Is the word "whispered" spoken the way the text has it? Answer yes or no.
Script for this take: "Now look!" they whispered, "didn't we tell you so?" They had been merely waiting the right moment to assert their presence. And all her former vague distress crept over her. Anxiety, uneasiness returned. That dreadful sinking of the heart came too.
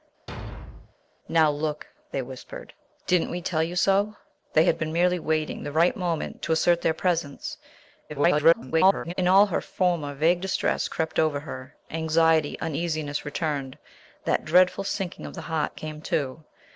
yes